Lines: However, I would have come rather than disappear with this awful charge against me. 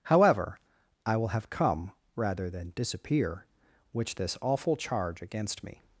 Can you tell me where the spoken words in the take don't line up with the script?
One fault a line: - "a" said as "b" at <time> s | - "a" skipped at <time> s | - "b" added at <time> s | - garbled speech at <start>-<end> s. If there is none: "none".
- "would" said as "will" at 1.2 s
- "with" said as "which" at 3.9 s